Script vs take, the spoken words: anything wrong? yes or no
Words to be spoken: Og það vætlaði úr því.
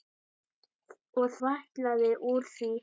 yes